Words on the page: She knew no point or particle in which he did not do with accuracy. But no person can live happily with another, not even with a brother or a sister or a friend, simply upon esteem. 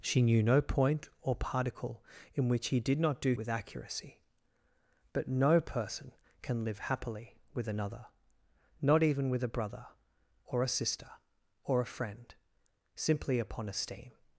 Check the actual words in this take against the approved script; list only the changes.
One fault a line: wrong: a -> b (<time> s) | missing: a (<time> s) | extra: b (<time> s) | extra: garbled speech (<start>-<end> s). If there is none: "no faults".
no faults